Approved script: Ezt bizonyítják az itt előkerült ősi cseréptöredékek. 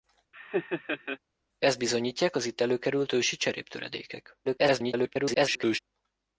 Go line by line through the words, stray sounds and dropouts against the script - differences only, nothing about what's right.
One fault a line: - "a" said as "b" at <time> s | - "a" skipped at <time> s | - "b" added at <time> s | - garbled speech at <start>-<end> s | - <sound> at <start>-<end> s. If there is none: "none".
- laugh at 0.3-1.2 s
- garbled speech at 4.4-5.8 s